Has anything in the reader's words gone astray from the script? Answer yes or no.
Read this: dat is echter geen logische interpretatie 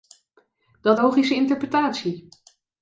yes